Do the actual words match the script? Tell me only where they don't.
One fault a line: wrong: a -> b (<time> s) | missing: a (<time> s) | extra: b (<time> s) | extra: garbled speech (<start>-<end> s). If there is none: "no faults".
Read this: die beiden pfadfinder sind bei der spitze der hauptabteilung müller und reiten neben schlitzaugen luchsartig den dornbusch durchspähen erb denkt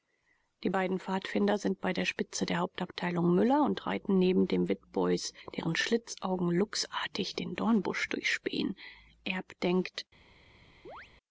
extra: den witbois deren (4.5 s)